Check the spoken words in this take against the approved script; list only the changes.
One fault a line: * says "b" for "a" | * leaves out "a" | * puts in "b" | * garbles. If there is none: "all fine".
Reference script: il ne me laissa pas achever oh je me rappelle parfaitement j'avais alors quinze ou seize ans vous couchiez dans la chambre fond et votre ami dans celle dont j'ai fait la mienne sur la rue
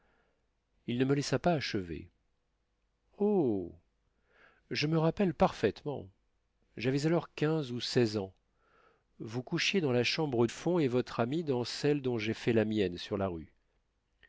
all fine